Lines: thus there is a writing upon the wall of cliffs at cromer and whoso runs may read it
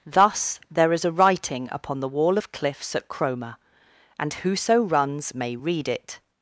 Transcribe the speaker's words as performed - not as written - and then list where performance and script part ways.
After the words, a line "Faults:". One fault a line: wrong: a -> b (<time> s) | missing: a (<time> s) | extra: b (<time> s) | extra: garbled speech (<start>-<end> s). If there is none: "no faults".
thus there is a writing upon the wall of cliffs at cromer and whoso runs may read it
Faults:
no faults